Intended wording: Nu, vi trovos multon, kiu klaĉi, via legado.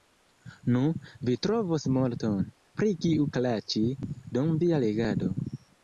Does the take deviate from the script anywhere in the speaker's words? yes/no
yes